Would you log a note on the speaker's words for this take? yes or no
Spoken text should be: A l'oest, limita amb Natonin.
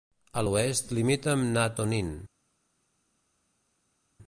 no